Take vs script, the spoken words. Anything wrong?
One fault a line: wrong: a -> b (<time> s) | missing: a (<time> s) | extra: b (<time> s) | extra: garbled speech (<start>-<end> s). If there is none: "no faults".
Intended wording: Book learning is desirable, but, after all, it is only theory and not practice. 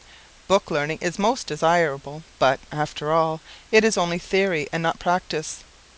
extra: most (1.2 s)